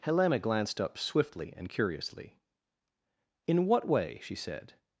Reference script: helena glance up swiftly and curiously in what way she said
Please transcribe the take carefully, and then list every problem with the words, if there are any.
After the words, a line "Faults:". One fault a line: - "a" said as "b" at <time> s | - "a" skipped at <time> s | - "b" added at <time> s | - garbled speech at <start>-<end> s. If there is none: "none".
helena glanced up swiftly and curiously in what way she said
Faults:
- "glance" said as "glanced" at 0.4 s